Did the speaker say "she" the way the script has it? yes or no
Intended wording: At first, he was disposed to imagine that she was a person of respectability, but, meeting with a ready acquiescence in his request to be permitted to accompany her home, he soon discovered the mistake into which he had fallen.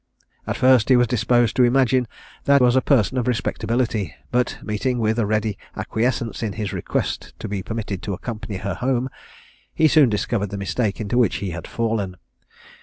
no